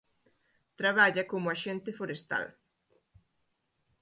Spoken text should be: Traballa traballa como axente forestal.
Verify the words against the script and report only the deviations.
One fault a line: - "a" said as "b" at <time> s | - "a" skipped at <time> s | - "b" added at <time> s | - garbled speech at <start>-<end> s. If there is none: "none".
- "traballa" skipped at 1.2 s